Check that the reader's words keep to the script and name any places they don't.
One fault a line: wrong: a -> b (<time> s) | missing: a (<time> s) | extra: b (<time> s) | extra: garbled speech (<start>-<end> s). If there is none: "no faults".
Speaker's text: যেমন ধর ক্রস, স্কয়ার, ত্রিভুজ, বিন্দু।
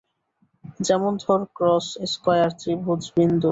no faults